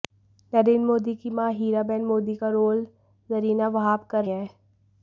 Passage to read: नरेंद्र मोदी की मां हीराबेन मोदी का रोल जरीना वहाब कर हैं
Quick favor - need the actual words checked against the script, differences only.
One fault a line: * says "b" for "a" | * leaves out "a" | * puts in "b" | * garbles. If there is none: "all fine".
all fine